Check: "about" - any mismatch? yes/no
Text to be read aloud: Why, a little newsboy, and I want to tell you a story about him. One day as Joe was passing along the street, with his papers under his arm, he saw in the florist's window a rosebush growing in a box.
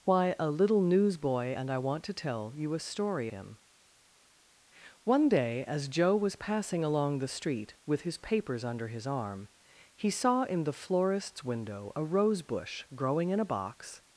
yes